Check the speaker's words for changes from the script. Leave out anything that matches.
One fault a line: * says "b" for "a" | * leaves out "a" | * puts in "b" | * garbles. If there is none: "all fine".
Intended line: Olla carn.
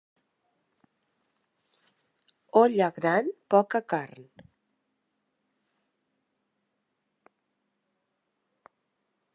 * puts in "gran poca"